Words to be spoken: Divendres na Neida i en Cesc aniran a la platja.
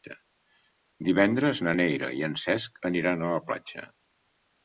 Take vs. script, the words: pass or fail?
pass